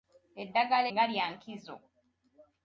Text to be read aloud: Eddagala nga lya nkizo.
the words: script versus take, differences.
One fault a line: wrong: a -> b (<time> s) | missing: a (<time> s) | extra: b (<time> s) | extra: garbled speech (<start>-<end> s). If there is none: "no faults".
no faults